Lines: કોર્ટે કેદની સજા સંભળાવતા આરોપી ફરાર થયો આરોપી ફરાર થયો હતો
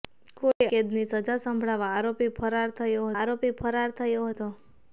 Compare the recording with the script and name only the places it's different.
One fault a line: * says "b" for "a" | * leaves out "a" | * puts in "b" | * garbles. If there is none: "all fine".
all fine